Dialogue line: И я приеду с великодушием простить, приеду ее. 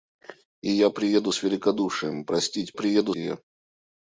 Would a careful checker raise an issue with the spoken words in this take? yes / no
no